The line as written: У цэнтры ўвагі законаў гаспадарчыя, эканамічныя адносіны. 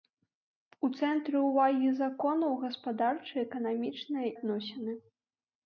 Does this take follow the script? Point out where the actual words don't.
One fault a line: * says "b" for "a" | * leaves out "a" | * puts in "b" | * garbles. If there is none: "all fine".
all fine